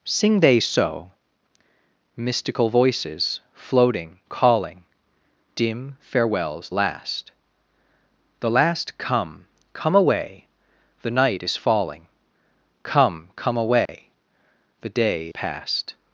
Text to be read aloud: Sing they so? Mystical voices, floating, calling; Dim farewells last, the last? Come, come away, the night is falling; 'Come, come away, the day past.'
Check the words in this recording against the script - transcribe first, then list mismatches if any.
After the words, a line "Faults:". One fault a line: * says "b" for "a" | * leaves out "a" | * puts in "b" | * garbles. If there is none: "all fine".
Sing they so? Mystical voices, floating, calling; Dim farewells last, the last? Come, come away, the night is falling; 'Come, come away, the day past.'
Faults:
all fine